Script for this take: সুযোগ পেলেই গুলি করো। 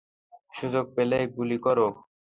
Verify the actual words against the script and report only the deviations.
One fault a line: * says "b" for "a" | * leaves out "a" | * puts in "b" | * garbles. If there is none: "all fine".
all fine